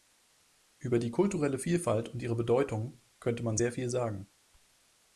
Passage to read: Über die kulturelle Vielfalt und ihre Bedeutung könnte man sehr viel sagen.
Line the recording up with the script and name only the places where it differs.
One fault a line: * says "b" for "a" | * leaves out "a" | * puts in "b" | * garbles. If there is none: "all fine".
all fine